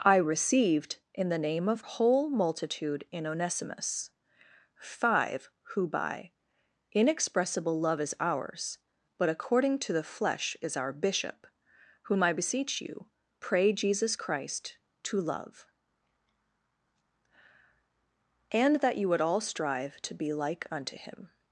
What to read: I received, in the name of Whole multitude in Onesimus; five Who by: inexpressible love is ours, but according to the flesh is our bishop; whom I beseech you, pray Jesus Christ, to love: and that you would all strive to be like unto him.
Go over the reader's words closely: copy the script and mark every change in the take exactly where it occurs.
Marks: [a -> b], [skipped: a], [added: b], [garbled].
I received, in the name of Whole multitude in Onesimus; five Who by: inexpressible love is ours, but according to the flesh is our bishop; whom I beseech you, pray Jesus Christ, to love: and that you would all strive to be like unto him.